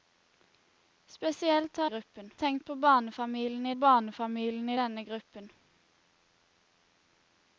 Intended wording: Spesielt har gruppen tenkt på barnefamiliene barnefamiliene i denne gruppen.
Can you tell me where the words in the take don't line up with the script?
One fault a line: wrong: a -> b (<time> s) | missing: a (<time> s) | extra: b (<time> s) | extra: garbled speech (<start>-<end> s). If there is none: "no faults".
no faults